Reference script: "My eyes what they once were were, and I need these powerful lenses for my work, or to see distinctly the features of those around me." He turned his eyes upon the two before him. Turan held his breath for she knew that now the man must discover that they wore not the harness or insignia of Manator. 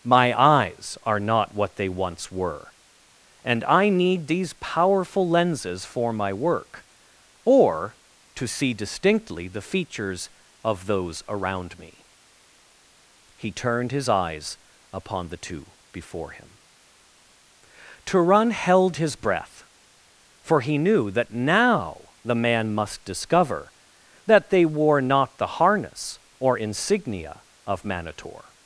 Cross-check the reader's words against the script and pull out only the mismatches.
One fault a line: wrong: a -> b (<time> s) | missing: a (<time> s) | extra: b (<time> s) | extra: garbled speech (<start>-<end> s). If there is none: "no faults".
extra: are not (1.0 s)
missing: were (2.7 s)
wrong: she -> he (20.6 s)